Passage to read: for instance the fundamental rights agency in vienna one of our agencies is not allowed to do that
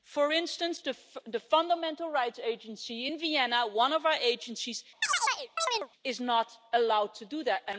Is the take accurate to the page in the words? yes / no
yes